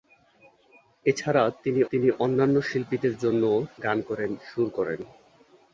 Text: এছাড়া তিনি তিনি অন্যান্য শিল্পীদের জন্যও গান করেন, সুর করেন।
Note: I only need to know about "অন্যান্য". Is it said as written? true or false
true